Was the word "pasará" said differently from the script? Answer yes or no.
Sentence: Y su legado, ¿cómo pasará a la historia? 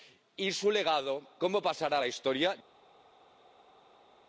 no